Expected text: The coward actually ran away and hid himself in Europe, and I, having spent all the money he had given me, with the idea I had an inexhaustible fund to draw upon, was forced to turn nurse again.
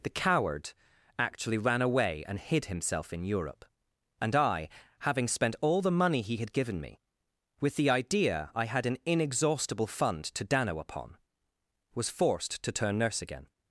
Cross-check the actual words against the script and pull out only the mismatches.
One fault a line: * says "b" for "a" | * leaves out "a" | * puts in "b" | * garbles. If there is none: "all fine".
* says "dano" for "draw"